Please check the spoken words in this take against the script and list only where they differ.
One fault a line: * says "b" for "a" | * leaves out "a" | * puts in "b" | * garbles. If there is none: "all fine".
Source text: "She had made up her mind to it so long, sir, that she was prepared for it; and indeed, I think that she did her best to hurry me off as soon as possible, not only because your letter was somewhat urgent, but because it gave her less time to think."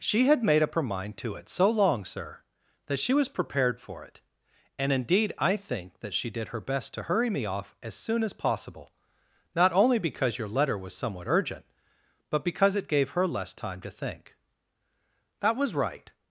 * puts in "That was right"